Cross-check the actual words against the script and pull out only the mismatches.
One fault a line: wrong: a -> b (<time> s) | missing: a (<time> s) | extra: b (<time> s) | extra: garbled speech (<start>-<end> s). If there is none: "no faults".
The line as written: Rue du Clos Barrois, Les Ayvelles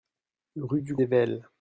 missing: Clos Barrois Les (0.9 s)